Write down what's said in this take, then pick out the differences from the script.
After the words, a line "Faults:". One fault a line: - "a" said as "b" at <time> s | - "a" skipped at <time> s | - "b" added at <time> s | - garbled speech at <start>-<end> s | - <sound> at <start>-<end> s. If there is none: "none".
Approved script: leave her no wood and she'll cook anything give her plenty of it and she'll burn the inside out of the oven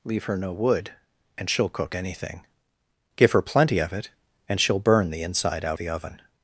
leave her no wood and she'll cook anything give her plenty of it and she'll burn the inside out the oven
Faults:
- "of" skipped at 5.8 s